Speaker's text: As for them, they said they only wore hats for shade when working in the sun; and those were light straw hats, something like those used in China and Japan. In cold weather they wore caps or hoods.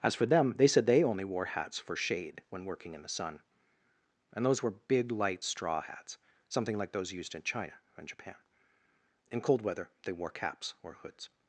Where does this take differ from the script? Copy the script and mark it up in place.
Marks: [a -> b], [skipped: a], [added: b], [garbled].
As for them, they said they only wore hats for shade when working in the sun; and those were [added: big] light straw hats, something like those used in China and Japan. In cold weather they wore caps or hoods.